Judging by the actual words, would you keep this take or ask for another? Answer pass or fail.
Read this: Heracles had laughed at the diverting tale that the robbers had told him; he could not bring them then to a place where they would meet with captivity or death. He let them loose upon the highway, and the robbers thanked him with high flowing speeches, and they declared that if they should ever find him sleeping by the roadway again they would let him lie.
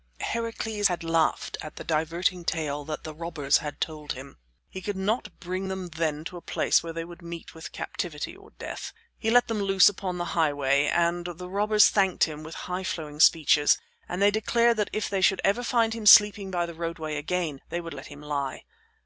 pass